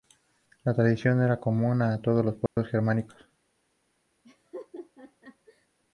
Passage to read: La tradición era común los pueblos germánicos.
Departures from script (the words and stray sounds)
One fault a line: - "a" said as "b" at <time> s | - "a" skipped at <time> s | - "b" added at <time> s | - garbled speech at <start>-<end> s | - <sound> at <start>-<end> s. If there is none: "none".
- "a todos" added at 1.8 s
- dropout at 2.5-2.6 s
- laugh at 4.2-5.7 s